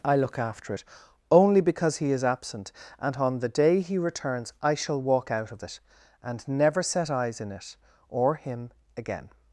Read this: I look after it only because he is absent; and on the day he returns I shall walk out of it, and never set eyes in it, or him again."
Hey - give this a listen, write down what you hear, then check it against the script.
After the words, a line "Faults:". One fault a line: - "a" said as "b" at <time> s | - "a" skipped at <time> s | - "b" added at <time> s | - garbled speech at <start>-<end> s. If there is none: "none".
I look after it only because he is absent; and on the day he returns I shall walk out of it, and never set eyes in it, or him again."
Faults:
none